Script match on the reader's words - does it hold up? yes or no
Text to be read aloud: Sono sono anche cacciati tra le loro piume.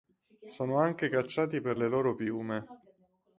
no